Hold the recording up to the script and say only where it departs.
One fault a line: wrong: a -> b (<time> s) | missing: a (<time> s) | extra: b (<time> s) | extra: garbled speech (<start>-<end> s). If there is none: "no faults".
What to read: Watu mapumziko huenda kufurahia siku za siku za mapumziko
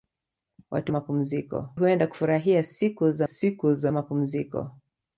no faults